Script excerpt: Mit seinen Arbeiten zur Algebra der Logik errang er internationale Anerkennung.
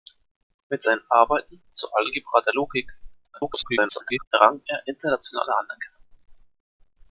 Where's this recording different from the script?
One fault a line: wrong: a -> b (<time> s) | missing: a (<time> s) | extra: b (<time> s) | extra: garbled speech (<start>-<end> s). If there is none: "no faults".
extra: garbled speech (3.3-4.3 s)